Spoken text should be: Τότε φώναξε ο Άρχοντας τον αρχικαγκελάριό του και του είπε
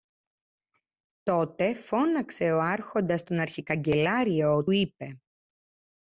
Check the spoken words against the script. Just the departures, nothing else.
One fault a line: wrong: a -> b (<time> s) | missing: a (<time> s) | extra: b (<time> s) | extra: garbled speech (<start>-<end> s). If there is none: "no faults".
missing: του και του (4.7 s)